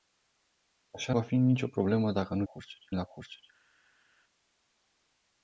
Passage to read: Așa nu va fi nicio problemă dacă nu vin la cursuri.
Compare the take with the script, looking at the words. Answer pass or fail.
fail